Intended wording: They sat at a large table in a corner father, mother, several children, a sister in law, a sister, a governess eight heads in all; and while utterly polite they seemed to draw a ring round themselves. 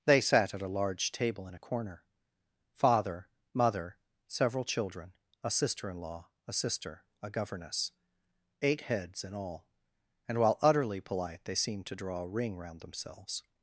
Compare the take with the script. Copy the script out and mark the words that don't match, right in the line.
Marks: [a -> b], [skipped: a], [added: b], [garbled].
They sat at a large table in a corner father, mother, several children, a sister in law, a sister, a governess eight heads in all; and while utterly polite they seemed to draw a ring round themselves.